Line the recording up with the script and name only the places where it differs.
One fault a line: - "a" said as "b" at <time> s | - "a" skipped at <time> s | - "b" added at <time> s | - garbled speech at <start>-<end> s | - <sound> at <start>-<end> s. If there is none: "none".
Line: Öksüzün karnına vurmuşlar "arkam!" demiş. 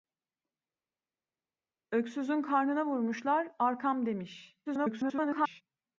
- garbled speech at 4.7-5.6 s